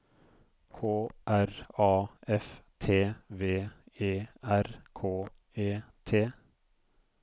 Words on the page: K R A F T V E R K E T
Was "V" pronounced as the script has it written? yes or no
yes